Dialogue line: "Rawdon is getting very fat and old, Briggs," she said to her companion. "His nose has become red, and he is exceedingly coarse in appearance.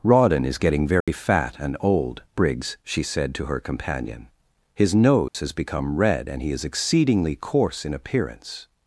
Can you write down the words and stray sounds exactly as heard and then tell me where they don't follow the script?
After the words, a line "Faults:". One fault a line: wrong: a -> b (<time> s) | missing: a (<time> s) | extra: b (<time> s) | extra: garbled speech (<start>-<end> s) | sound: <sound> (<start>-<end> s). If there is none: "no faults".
"Rawdon is getting very fat and old, Briggs," she said to her companion. "His nose has become red, and he is exceedingly coarse in appearance.
Faults:
sound: dropout (1.0-1.1 s)
sound: dropout (5.3-5.3 s)